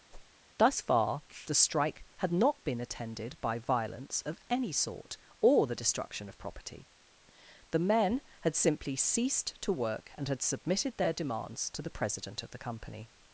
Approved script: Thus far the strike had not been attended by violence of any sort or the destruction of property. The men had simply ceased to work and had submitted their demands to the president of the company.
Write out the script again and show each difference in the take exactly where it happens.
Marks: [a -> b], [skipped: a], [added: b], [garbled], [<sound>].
[whoosh] Thus far the strike had not been attended by violence of any sort or the destruction of property. The men had simply ceased to work and had submitted their demands to the president of the company.